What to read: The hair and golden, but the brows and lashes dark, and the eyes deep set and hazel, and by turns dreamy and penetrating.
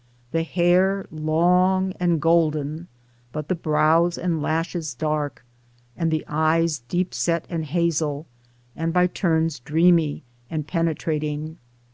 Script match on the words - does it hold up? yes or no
no